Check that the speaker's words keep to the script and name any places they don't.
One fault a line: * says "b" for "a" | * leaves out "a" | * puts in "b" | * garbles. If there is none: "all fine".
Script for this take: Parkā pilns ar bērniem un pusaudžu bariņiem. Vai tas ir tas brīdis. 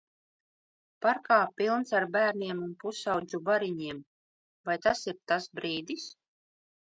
all fine